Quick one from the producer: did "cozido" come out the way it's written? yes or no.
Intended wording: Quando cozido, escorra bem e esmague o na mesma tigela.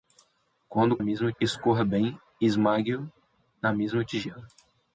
no